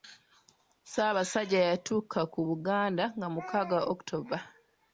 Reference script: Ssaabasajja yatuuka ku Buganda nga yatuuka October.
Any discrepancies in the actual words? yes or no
yes